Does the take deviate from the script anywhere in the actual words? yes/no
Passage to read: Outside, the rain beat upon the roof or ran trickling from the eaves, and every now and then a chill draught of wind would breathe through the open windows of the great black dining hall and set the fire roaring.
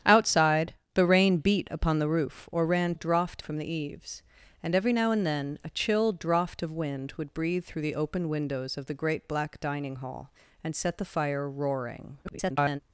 yes